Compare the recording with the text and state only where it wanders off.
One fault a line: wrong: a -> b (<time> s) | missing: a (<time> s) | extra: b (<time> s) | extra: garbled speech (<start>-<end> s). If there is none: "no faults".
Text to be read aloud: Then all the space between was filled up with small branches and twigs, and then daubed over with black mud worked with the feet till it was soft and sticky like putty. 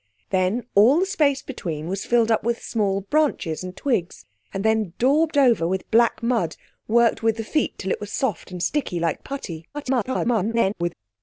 extra: garbled speech (9.7-10.9 s)